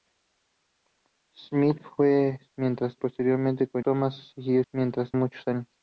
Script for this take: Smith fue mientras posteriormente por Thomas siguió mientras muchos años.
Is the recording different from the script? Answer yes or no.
no